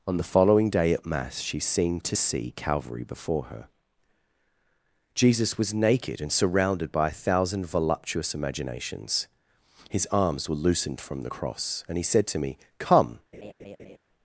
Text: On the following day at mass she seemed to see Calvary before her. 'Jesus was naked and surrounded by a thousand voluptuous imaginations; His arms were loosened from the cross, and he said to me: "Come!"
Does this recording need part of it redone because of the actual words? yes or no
no